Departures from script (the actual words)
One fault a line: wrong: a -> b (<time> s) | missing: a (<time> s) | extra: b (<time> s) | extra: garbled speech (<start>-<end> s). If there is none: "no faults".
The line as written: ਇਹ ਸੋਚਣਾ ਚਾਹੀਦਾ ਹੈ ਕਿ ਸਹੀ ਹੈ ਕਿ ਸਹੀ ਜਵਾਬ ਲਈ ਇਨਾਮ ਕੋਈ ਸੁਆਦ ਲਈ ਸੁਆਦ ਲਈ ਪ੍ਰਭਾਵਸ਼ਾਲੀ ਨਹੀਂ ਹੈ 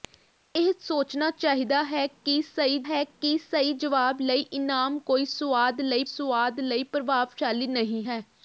no faults